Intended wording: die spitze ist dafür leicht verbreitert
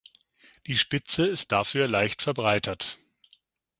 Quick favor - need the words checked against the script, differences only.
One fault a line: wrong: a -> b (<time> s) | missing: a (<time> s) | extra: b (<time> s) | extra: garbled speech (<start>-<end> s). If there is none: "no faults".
no faults